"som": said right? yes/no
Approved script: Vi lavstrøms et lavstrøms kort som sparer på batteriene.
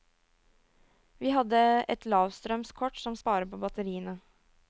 yes